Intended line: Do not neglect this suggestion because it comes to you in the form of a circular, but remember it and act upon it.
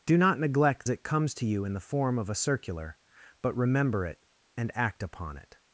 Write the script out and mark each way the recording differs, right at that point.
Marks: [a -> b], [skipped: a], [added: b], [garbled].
Do not neglect [skipped: this suggestion because] it comes to you in the form of a circular, but remember it and act upon it.